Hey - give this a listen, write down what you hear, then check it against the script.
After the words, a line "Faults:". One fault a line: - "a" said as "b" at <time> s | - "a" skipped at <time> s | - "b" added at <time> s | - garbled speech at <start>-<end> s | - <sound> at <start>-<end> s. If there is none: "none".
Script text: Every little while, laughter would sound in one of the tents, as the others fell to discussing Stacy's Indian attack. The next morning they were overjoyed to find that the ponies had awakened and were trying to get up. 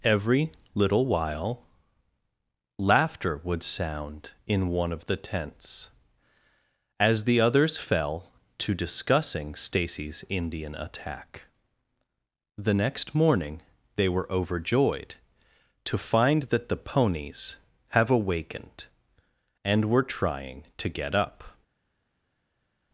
Every little while, laughter would sound in one of the tents, as the others fell to discussing Stacy's Indian attack. The next morning they were overjoyed to find that the ponies have awakened and were trying to get up.
Faults:
- "had" said as "have" at 17.9 s